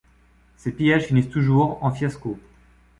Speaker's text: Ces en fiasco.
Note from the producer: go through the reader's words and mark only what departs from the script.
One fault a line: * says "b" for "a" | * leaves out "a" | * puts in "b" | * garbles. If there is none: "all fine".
* puts in "pillages finissent toujours"